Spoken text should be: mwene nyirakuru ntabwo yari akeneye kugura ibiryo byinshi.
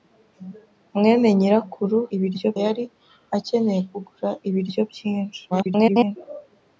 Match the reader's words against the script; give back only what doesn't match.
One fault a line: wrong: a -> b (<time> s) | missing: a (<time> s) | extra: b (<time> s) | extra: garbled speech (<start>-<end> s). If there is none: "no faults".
wrong: ntabwo -> ibiryo (2.2 s)
extra: garbled speech (5.5-6.2 s)